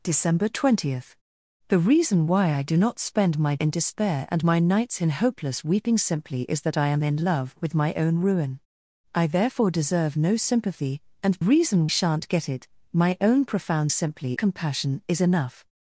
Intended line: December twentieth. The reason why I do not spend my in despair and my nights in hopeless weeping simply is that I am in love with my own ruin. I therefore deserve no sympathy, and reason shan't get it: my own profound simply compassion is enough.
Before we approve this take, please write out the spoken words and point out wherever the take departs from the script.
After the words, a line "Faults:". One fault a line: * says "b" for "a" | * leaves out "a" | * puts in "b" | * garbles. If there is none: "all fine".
December twentieth. The reason why I do not spend my in despair and my nights in hopeless weeping simply is that I am in love with my own ruin. I therefore deserve no sympathy, and reason shan't get it: my own profound simply compassion is enough.
Faults:
all fine